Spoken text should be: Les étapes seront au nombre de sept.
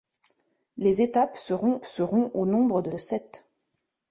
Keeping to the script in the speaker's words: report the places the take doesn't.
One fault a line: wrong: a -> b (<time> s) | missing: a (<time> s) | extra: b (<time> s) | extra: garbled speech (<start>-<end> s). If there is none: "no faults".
extra: seront (1.8 s)
extra: de (2.9 s)